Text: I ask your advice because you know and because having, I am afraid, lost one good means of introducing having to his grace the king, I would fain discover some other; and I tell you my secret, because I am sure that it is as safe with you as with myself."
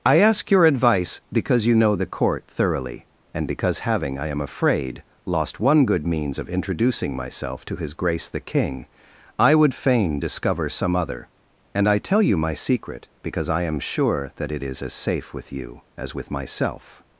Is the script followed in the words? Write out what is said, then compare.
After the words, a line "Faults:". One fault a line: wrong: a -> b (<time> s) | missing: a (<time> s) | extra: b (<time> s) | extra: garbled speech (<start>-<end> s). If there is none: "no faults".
I ask your advice because you know the court thoroughly, and because having, I am afraid, lost one good means of introducing myself to his grace the king, I would fain discover some other; and I tell you my secret, because I am sure that it is as safe with you as with myself."
Faults:
extra: the court thoroughly (1.9 s)
wrong: having -> myself (7.2 s)